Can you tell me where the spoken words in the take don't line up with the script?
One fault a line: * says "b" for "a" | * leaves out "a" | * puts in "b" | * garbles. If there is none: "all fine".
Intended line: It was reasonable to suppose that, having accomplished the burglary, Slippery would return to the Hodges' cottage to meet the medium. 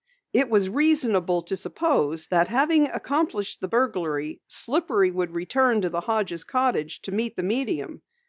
all fine